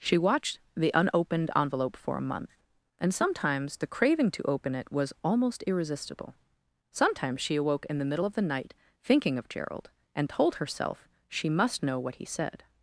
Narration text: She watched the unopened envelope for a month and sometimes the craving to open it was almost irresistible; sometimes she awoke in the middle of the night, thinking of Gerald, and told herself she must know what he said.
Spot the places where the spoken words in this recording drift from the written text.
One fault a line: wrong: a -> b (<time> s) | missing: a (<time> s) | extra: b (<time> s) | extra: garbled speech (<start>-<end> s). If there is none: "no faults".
no faults